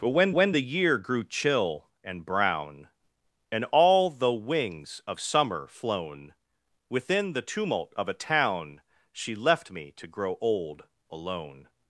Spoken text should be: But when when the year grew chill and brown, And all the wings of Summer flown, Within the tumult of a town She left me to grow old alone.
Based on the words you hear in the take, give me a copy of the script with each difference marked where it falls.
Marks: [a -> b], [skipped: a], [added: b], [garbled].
But when when the year grew chill and brown, And all the wings of Summer flown, Within the tumult of a town She left me to grow old alone.